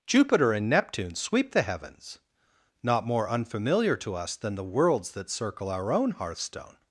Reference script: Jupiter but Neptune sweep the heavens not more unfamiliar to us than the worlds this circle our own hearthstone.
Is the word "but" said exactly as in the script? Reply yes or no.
no